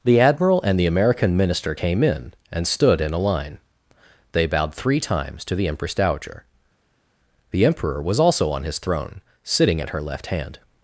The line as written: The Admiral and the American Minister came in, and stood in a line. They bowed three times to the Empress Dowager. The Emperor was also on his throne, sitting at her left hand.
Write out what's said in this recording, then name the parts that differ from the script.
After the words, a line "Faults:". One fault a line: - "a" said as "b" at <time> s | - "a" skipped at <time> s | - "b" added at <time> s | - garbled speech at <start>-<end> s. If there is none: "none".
The Admiral and the American Minister came in, and stood in a line. They bowed three times to the Empress Dowager. The Emperor was also on his throne, sitting at her left hand.
Faults:
none